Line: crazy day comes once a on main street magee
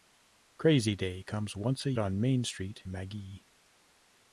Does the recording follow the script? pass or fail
pass